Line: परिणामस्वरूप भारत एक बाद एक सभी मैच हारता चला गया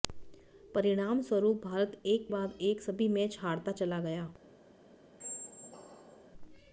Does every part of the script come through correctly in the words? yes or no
yes